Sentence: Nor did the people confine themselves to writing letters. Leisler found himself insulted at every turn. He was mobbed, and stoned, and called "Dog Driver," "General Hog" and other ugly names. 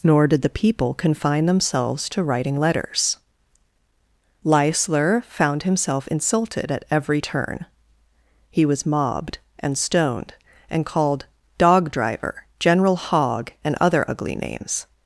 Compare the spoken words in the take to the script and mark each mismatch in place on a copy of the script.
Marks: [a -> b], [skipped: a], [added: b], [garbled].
Nor did the people confine themselves to writing letters. Leisler found himself insulted at every turn. He was mobbed, and stoned, and called "Dog Driver," "General Hog" and other ugly names.